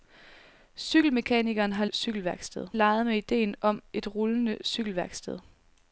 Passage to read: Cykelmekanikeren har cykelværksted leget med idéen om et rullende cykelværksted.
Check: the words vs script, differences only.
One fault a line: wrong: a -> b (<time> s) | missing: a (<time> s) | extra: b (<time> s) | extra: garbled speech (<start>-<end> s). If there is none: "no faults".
no faults